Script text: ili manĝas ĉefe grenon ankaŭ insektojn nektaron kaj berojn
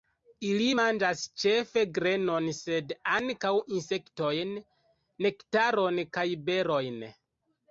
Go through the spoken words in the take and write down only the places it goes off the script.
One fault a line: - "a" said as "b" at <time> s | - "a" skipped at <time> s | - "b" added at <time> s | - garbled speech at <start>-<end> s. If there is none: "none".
- "sed" added at 2.6 s